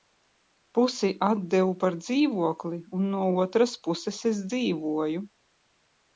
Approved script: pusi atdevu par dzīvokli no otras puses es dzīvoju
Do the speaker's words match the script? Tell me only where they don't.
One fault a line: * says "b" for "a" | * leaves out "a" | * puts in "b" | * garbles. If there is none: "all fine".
* puts in "un"